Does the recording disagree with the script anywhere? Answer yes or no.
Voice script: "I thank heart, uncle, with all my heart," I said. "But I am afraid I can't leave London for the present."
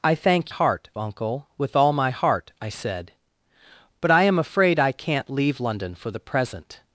no